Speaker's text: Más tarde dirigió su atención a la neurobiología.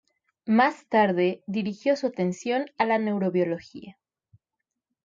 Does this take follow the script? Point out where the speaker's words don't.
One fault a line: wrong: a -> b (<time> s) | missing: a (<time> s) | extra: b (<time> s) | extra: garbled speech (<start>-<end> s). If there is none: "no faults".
no faults